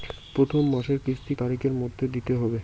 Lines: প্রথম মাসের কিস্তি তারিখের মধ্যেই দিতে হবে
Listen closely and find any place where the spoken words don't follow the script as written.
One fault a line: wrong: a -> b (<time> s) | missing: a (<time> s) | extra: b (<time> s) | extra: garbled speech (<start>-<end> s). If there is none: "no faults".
no faults